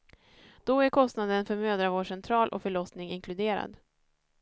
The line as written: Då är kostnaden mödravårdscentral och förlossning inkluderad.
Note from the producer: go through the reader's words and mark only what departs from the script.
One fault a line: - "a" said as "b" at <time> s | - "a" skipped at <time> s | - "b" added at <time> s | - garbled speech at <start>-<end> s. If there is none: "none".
- "för" added at 1.4 s